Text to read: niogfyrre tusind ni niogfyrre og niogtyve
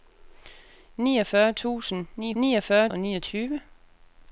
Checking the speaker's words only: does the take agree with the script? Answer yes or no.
yes